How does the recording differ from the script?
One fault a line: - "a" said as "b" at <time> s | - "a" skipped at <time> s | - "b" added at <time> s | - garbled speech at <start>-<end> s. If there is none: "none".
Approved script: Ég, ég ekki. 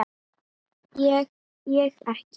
none